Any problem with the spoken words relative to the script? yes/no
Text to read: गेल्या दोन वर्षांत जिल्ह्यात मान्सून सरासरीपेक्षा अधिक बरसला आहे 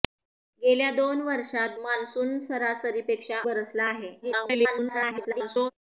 yes